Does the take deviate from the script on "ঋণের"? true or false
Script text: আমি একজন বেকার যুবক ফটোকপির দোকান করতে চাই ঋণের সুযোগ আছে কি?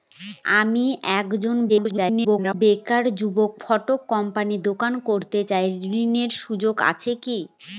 false